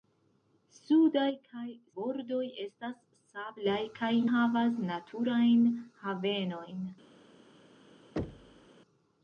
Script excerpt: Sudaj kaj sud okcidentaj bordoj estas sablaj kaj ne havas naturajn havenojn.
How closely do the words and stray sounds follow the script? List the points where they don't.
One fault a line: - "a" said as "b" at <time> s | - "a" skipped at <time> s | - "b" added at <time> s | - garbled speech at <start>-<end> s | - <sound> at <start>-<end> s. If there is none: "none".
- "sud okcidentaj" skipped at 1.6 s
- "ne" skipped at 4.1 s
- thud at 8.2-8.7 s